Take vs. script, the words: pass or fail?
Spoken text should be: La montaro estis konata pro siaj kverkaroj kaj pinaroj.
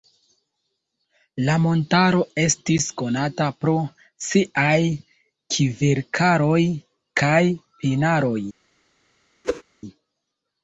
pass